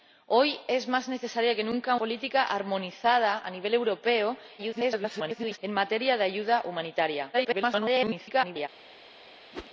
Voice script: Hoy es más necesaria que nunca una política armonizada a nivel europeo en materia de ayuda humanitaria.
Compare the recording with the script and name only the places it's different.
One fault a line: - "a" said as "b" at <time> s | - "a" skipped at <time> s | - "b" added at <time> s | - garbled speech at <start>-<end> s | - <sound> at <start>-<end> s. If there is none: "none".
- "una" skipped at 1.9 s
- garbled speech at 4.6-5.6 s
- garbled speech at 7.3-8.7 s
- whoosh at 9.5-9.7 s